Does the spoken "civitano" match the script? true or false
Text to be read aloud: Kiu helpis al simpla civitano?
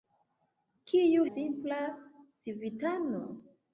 true